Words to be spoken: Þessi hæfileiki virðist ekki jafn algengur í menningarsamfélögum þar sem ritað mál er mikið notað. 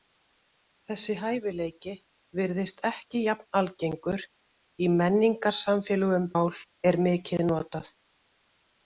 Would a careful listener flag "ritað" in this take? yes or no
yes